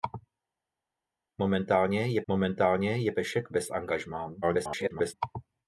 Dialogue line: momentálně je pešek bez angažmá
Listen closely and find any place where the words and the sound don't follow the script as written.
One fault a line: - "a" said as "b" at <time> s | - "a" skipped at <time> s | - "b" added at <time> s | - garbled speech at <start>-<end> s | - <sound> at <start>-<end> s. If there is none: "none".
- "momentálně je" added at 2.3 s
- garbled speech at 4.4-5.1 s